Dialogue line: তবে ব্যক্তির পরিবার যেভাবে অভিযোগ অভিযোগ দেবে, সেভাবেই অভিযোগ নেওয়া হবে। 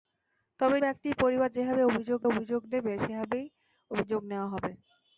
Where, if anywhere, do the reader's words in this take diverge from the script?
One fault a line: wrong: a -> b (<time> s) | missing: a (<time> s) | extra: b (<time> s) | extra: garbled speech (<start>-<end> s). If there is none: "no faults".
no faults